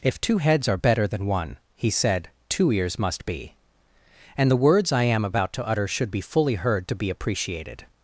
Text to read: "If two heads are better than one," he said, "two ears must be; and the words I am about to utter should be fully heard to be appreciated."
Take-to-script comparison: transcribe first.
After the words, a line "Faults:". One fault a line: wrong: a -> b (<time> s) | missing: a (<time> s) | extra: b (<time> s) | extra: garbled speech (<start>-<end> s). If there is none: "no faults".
"If two heads are better than one," he said, "two ears must be; and the words I am about to utter should be fully heard to be appreciated."
Faults:
no faults